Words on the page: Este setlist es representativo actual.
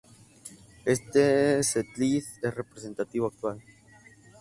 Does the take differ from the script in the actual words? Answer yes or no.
no